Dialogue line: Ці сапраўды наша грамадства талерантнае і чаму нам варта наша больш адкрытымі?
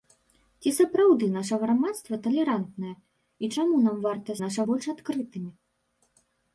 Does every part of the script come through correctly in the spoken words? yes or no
yes